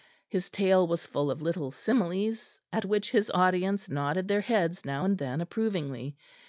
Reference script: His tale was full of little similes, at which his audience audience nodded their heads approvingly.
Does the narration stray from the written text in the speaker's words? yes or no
yes